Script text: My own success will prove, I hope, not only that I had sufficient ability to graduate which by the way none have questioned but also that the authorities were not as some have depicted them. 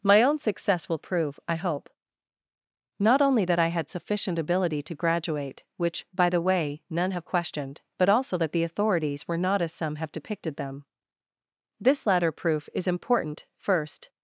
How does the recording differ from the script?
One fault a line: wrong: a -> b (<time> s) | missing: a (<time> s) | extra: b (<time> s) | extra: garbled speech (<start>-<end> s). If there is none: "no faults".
extra: This latter proof is important first (11.8 s)